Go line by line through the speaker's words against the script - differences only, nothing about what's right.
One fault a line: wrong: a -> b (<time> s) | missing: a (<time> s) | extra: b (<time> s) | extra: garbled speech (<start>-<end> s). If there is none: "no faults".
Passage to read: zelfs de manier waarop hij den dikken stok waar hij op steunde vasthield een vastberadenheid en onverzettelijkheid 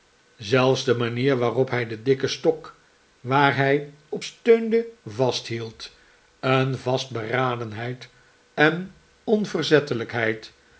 no faults